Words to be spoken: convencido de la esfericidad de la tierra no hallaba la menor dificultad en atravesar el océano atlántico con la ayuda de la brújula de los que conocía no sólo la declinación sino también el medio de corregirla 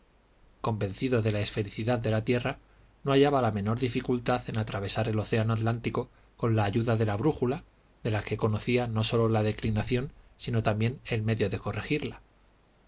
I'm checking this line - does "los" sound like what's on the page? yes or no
no